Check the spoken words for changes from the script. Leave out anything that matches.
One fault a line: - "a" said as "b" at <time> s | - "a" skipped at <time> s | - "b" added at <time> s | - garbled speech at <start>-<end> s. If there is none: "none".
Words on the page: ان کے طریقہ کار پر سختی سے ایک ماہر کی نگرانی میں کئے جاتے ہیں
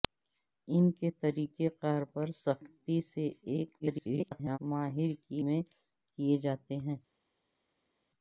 - garbled speech at 3.8-4.6 s
- "نگرانی" skipped at 5.4 s